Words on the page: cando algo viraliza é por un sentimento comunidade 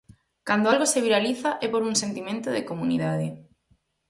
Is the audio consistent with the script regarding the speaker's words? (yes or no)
no